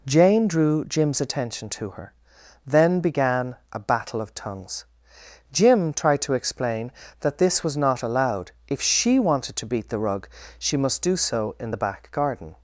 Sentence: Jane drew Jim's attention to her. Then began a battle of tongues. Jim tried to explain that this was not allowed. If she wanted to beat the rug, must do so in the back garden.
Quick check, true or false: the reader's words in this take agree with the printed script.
false